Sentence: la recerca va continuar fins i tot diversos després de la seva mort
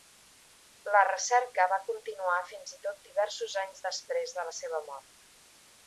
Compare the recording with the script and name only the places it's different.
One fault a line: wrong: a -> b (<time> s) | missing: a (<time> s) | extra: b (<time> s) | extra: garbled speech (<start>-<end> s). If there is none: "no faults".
extra: anys (3.7 s)